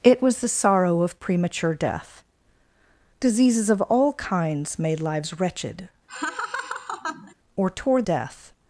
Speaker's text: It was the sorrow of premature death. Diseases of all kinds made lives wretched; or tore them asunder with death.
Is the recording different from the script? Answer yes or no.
yes